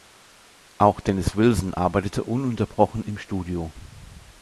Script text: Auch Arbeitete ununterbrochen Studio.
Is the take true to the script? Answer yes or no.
no